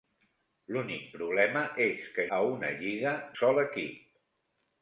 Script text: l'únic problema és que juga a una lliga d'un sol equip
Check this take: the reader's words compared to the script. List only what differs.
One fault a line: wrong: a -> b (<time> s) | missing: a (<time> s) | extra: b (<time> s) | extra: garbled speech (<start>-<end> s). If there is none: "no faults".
missing: juga (2.2 s)
missing: d'un (3.2 s)